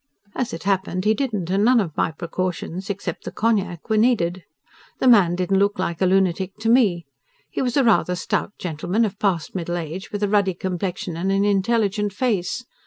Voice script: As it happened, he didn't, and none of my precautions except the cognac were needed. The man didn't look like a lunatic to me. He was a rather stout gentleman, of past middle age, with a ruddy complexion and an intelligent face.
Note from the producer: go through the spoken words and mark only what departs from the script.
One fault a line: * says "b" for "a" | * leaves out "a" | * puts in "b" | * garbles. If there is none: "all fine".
all fine